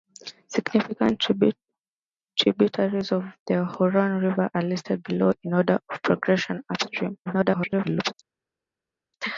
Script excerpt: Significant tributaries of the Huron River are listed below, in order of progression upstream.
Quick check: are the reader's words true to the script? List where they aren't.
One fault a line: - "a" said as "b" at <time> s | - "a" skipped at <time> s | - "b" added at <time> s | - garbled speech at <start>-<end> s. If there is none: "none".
- garbled speech at 7.3-8.1 s